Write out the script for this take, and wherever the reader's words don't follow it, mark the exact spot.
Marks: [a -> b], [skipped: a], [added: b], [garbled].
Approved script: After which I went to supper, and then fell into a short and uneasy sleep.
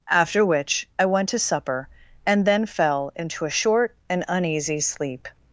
After which I went to supper, and then fell into a short and uneasy sleep.